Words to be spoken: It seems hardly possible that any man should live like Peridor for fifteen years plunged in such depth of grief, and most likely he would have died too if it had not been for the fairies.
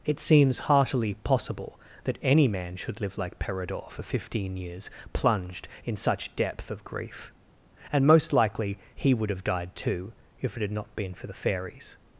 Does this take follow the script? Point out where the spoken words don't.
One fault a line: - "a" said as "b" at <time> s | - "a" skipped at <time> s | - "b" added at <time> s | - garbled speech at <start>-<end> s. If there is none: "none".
- "hardly" said as "heartily" at 0.6 s